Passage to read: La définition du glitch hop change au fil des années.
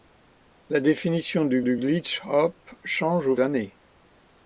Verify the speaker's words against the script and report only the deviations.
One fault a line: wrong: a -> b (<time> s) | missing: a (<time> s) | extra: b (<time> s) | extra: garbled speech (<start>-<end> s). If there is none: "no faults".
extra: du (1.6 s)
missing: fil des (3.4 s)